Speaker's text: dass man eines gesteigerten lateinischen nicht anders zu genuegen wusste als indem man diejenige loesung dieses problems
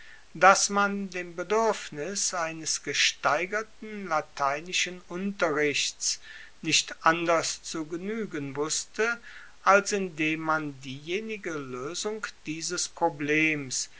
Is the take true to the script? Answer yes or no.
no